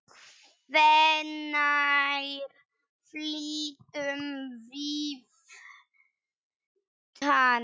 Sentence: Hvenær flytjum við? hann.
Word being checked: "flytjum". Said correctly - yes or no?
yes